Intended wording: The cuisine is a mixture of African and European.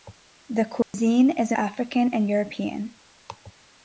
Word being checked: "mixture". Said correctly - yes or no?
no